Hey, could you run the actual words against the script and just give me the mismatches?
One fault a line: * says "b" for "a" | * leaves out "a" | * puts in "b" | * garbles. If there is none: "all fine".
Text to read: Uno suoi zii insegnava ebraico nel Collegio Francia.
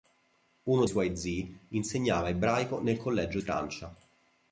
all fine